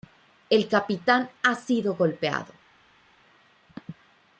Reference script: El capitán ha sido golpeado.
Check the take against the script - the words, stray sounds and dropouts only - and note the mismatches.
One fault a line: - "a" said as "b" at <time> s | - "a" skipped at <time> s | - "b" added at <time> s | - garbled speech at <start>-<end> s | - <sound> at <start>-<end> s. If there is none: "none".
none